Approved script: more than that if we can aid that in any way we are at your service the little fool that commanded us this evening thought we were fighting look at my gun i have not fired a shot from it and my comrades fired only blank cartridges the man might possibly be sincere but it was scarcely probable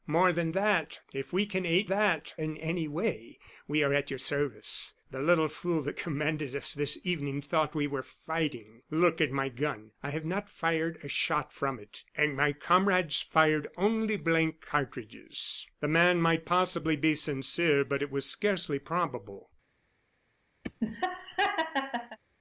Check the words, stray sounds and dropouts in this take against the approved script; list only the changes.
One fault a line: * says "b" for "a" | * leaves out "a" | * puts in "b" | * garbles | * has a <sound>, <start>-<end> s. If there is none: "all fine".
* has a laugh, 20.6-22.2 s